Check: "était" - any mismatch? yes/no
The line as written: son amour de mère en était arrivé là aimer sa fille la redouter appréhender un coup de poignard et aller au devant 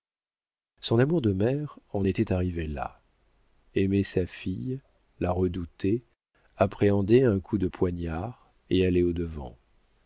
no